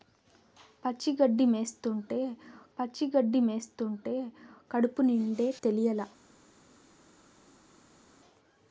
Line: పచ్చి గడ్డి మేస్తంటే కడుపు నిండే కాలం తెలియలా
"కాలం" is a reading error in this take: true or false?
true